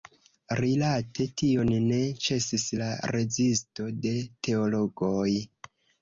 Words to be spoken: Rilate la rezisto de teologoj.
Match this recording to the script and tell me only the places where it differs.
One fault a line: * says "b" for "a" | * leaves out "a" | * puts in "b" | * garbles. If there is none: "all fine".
* puts in "tion ne ĉesis"